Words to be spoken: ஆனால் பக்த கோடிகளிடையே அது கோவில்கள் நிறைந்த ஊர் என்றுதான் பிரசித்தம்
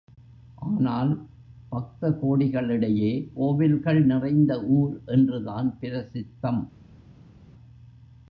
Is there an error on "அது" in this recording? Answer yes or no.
yes